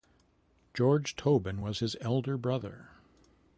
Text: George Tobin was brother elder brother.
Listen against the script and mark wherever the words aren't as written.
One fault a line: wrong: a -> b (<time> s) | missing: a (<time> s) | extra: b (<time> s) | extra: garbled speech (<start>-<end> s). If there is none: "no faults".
wrong: brother -> his (1.8 s)